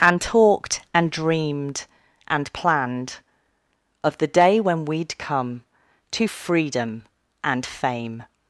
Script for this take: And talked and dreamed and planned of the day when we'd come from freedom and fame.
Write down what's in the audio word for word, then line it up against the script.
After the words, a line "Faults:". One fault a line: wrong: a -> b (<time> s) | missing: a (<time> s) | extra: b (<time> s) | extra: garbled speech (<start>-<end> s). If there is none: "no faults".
And talked and dreamed and planned of the day when we'd come to freedom and fame.
Faults:
wrong: from -> to (6.1 s)